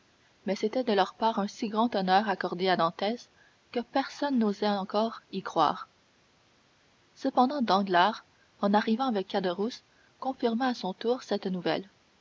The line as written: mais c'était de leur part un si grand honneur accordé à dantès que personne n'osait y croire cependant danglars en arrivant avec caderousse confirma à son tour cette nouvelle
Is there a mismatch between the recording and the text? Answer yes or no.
yes